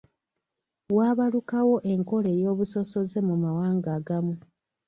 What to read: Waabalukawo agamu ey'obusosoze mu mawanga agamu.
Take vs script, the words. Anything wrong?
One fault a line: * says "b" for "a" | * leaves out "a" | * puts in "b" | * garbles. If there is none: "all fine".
* says "enkola" for "agamu"